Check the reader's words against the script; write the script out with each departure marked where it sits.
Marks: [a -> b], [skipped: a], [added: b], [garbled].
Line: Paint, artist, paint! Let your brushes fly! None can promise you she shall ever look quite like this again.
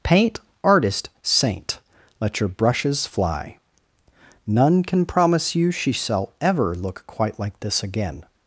Paint, artist, [paint! -> saint] Let your brushes fly! None can promise you she shall ever look quite like this again.